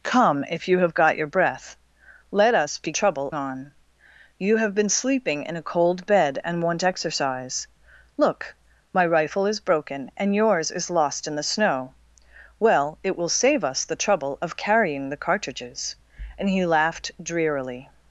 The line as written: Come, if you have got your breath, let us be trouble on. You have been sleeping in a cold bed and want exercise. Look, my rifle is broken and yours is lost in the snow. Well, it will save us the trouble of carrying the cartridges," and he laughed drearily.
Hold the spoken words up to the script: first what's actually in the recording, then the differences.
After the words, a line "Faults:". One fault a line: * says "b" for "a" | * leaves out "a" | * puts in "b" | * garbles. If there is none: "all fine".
Come, if you have got your breath, let us be trouble on. You have been sleeping in a cold bed and want exercise. Look, my rifle is broken and yours is lost in the snow. Well, it will save us the trouble of carrying the cartridges," and he laughed drearily.
Faults:
all fine